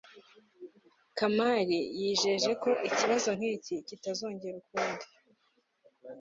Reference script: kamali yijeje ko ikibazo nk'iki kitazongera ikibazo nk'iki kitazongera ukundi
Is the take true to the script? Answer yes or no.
no